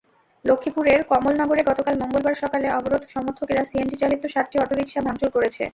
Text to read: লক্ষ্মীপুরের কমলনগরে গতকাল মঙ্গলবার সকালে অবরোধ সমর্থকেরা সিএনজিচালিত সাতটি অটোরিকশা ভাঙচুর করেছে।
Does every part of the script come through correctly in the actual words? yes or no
yes